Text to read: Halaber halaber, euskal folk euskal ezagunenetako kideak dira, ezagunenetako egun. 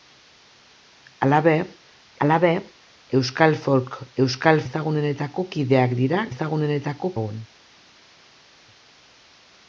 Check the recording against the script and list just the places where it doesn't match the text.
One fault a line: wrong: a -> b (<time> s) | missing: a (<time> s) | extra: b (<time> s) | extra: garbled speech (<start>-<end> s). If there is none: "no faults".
no faults